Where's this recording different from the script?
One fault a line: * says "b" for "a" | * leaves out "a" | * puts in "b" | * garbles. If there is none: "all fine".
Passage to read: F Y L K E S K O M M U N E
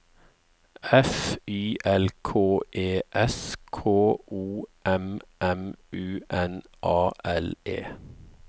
* puts in "A L"